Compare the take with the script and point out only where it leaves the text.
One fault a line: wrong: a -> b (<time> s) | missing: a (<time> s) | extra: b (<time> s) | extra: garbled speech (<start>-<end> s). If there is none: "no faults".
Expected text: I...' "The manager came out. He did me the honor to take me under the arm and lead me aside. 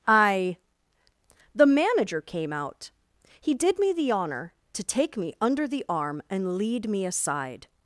no faults